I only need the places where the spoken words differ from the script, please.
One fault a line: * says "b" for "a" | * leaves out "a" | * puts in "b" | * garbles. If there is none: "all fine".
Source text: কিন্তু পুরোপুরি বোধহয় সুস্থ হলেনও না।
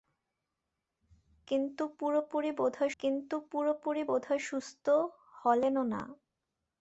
* puts in "কিন্তু পুরোপুরি বোধহয়"